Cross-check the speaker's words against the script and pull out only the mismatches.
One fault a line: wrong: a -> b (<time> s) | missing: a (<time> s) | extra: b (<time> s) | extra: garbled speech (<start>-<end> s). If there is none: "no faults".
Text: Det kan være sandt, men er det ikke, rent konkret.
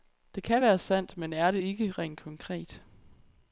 no faults